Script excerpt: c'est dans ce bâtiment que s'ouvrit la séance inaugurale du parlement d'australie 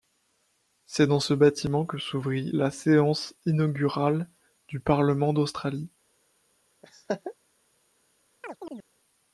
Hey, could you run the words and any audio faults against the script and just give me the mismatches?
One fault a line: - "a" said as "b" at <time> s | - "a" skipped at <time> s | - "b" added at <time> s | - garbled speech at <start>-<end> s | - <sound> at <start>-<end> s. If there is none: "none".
- laugh at 6.8-7.3 s
- chirp at 8.4-8.9 s